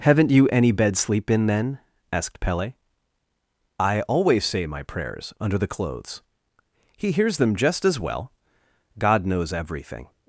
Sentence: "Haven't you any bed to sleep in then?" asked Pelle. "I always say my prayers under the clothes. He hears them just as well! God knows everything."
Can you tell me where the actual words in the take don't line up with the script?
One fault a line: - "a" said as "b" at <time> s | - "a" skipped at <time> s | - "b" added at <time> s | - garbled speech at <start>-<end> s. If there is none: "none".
- "to" skipped at 1.0 s